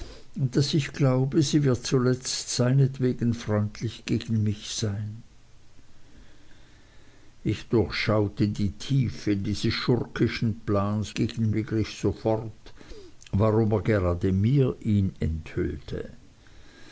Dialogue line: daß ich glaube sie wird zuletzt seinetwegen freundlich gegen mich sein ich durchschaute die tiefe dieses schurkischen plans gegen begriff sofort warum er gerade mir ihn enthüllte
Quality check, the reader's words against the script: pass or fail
pass